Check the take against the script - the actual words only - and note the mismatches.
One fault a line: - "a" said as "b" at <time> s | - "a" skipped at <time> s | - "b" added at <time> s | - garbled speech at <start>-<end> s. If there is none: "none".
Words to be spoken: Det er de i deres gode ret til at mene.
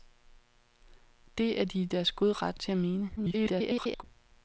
- garbled speech at 3.2-4.0 s